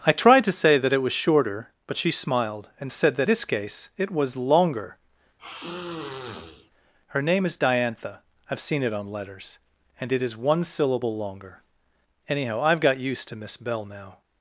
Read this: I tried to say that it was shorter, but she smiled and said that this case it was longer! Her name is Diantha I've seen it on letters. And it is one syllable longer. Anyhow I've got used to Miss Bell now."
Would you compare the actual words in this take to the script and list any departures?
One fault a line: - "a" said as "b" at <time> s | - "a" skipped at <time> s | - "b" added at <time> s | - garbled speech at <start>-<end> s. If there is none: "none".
none